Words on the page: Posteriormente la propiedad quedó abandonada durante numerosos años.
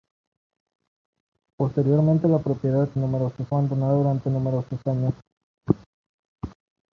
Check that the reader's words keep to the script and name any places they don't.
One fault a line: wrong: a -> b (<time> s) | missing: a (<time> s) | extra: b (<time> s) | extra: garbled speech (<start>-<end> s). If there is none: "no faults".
wrong: quedó -> numerosos (3.0 s)